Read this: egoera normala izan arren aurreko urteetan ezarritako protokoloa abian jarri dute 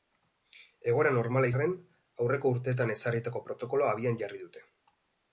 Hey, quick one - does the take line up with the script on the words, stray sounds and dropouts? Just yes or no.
no